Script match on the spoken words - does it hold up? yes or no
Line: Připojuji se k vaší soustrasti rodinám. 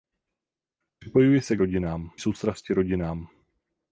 no